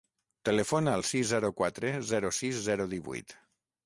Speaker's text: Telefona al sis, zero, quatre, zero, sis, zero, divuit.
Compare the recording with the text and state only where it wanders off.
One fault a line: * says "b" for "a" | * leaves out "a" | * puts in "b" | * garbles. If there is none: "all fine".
all fine